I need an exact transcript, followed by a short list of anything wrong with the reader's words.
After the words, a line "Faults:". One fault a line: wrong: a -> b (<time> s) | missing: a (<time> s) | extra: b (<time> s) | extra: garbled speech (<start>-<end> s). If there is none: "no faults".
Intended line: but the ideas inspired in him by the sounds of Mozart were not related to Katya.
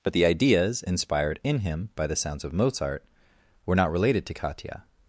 but the ideas inspired in him by the sounds of Mozart were not related to Katya.
Faults:
no faults